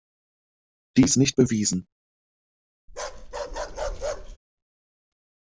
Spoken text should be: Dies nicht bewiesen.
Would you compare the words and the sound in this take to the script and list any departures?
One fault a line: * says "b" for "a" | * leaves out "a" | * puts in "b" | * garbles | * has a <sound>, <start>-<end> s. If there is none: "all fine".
* has a bark, 2.9-4.4 s